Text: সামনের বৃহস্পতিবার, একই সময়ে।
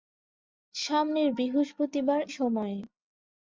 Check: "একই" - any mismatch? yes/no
yes